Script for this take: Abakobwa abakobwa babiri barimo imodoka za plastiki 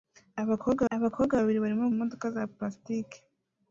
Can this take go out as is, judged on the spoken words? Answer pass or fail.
pass